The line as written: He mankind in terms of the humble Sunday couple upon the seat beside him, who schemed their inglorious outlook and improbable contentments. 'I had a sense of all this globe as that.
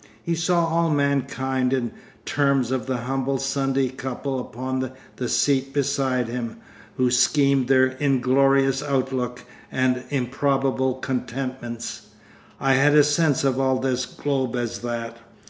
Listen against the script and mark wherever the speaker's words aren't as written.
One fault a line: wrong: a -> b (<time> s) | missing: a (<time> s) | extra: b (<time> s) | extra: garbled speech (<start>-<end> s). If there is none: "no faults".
extra: saw all (0.3 s)